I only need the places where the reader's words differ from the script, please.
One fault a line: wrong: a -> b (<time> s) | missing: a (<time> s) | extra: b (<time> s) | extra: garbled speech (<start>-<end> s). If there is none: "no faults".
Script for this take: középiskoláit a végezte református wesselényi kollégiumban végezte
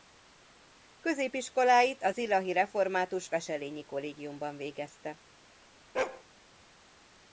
wrong: végezte -> zilahi (2.1 s)